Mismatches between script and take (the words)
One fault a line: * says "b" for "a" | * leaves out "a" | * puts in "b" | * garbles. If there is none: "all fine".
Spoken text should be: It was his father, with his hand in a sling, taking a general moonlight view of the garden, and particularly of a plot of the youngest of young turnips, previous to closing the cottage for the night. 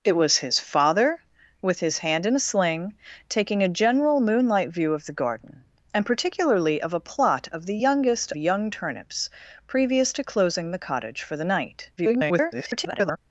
* leaves out "of"
* garbles